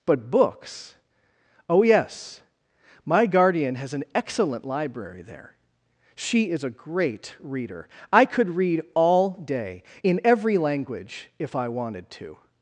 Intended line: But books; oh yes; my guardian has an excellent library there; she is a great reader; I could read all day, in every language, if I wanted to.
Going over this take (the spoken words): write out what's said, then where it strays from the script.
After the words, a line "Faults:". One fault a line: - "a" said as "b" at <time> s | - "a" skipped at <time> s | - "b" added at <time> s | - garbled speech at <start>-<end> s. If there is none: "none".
But books; oh yes; my guardian has an excellent library there; she is a great reader; I could read all day, in every language, if I wanted to.
Faults:
none